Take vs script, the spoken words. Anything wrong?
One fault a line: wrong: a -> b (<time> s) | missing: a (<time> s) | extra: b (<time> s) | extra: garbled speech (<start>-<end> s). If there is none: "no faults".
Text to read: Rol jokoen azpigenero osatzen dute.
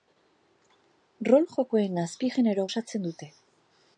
no faults